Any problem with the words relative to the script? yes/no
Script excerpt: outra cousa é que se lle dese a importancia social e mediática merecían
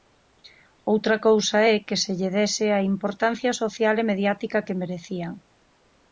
yes